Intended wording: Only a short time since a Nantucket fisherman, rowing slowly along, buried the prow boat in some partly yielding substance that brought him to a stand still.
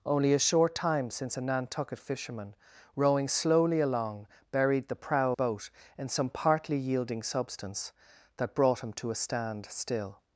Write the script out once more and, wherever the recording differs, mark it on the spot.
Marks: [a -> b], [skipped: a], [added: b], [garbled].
Only a short time since a Nantucket fisherman, rowing slowly along, buried the prow boat in some partly yielding substance that brought him to a stand still.